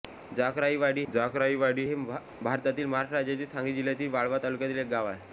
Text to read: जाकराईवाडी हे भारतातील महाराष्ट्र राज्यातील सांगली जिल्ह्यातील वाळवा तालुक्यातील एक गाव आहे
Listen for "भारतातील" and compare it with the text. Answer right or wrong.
right